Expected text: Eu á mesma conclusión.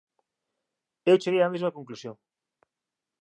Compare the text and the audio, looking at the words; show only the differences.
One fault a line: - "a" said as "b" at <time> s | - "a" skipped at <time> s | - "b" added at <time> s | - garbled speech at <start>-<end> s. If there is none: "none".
- "cheguei" added at 1.2 s